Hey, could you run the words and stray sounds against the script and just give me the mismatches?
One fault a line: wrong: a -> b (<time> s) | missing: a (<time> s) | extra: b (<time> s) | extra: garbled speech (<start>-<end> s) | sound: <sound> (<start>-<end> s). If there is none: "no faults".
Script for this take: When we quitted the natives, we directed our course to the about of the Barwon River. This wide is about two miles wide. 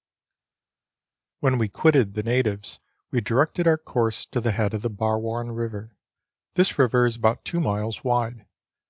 wrong: about -> head (4.5 s)
wrong: wide -> river (6.8 s)